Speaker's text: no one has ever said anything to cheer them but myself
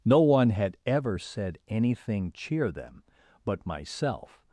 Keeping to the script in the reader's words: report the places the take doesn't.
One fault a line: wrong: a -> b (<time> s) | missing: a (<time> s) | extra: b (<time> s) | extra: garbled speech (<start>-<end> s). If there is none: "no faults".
wrong: has -> had (0.5 s)
missing: to (2.3 s)